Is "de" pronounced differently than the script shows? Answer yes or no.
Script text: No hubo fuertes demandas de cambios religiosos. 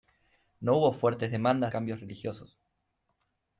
yes